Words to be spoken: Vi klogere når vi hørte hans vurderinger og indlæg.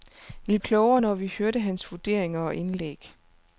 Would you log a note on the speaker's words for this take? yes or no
no